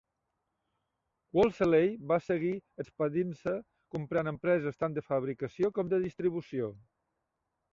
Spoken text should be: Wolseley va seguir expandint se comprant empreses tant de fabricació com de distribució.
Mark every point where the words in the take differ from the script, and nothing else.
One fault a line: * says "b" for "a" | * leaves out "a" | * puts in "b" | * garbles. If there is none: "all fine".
all fine